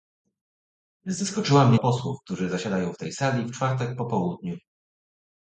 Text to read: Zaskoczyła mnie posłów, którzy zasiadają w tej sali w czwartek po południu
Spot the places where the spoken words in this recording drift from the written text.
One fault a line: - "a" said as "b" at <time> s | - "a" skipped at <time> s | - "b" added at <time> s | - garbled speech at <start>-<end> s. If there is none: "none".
none